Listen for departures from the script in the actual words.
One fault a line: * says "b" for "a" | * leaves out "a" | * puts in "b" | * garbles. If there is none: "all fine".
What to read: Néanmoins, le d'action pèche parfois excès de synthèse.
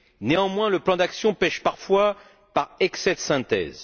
* puts in "plan"
* puts in "par"